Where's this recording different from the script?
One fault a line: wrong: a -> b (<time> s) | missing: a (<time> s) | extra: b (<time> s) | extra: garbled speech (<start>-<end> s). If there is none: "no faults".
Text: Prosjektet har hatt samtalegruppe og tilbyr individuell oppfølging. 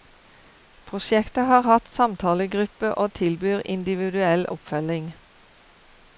no faults